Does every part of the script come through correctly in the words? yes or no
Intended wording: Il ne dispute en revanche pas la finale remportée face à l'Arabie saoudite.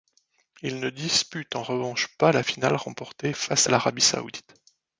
yes